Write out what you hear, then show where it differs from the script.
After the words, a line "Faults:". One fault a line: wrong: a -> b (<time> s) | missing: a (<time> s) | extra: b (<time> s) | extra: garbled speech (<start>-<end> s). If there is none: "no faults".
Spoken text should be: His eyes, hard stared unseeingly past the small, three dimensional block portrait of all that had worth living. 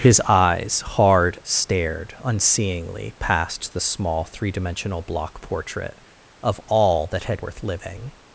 His eyes, hard stared unseeingly past the small, three dimensional block portrait of all that had worth living.
Faults:
no faults